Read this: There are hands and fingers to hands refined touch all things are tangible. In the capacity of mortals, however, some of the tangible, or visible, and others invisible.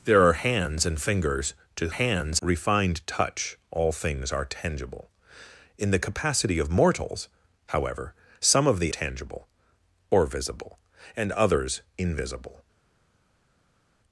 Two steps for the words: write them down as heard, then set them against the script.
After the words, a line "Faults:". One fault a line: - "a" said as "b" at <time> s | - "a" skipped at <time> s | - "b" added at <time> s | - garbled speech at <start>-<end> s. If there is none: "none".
There are hands and fingers to hands refined touch all things are tangible. In the capacity of mortals, however, some of the tangible, or visible, and others invisible.
Faults:
none